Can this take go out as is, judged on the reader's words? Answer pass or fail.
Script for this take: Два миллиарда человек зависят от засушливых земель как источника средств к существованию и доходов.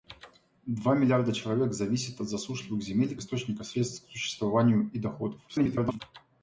fail